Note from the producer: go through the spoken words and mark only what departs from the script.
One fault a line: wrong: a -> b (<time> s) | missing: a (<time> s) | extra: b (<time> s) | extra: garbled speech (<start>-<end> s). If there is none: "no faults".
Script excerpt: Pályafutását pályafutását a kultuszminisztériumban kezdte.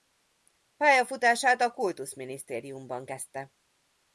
missing: pályafutását (1.6 s)